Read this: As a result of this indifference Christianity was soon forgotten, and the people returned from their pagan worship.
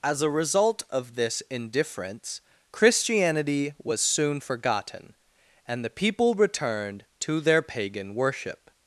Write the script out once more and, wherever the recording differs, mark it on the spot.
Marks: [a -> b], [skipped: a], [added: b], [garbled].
As a result of this indifference Christianity was soon forgotten, and the people returned [from -> to] their pagan worship.